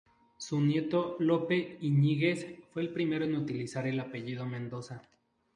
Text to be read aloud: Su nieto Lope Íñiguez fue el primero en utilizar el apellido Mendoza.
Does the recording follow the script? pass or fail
pass